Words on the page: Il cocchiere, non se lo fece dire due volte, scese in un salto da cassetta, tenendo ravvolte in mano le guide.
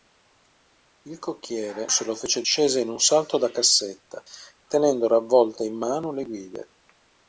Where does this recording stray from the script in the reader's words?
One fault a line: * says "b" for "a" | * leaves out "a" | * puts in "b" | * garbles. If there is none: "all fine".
* leaves out "non"
* leaves out "dire due volte"